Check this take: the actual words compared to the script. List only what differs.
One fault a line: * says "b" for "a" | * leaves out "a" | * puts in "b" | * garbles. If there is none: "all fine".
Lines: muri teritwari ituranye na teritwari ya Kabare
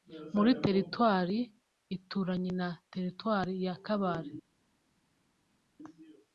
all fine